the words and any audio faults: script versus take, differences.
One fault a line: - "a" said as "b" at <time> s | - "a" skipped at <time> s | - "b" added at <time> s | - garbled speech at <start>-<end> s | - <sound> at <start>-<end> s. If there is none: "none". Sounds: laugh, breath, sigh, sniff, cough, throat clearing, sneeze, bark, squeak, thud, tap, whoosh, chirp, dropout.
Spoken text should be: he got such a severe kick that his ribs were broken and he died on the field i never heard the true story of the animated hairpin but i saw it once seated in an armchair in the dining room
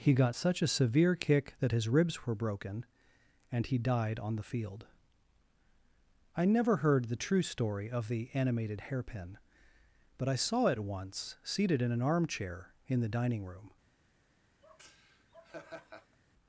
- laugh at 14.6-16.2 s